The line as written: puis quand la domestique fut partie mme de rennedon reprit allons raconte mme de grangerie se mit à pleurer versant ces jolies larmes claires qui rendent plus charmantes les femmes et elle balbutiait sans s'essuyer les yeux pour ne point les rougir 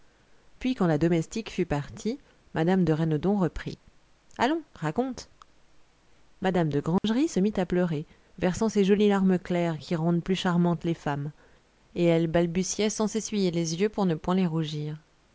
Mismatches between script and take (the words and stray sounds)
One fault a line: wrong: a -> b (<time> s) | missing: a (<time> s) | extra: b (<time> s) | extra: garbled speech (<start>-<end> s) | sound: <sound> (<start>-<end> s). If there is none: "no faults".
sound: dropout (7.0-7.0 s)